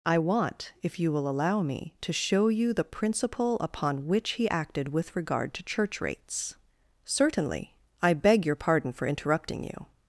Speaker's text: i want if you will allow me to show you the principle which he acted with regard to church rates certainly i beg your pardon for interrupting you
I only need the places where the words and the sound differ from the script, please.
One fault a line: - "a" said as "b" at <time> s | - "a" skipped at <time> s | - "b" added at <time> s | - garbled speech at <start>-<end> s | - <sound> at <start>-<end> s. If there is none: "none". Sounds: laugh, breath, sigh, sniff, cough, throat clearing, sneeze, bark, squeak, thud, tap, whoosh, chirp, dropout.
- "upon" added at 3.6 s